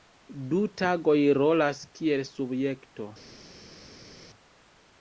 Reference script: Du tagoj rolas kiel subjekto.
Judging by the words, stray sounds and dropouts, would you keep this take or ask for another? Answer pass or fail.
pass